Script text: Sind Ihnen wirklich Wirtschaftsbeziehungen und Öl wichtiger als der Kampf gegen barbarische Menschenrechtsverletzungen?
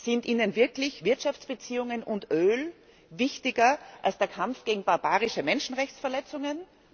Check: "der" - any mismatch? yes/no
no